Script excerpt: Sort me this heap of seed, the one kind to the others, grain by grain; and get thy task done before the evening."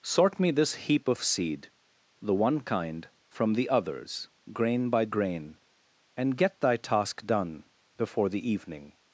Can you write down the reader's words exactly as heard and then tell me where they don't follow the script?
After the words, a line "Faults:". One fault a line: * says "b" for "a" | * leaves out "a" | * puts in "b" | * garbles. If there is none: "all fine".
Sort me this heap of seed, the one kind from the others, grain by grain; and get thy task done before the evening."
Faults:
* says "from" for "to"